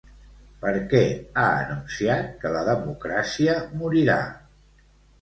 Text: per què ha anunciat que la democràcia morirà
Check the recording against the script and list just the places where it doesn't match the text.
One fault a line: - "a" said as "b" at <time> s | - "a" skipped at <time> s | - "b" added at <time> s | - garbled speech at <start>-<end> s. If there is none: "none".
none